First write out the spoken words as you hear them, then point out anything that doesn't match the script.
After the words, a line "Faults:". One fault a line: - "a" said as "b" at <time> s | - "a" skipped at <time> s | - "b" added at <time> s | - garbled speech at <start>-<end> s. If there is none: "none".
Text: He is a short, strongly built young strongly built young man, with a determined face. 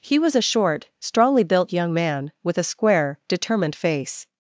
He was a short, strongly built young man, with a square, determined face.
Faults:
- "is" said as "was" at 0.2 s
- "strongly built young" skipped at 1.9 s
- "square" added at 2.6 s